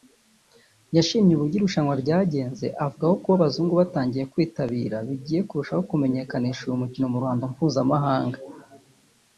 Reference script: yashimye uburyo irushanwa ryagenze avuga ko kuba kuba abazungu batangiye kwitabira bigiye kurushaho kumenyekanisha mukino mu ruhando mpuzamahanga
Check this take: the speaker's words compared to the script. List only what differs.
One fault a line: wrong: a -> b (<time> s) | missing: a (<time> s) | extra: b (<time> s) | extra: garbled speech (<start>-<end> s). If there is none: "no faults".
missing: kuba (3.4 s)
extra: uyu (6.7 s)